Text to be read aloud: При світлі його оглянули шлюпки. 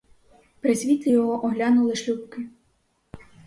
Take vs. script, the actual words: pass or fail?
pass